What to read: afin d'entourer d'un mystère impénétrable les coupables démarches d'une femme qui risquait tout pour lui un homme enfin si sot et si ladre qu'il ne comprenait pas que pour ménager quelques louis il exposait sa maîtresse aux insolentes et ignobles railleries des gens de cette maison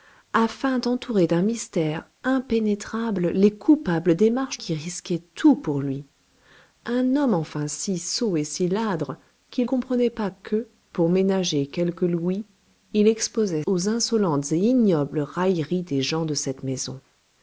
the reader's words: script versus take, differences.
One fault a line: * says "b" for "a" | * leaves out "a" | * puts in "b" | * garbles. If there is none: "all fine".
* leaves out "d'une femme"
* leaves out "ne"
* leaves out "sa maîtresse"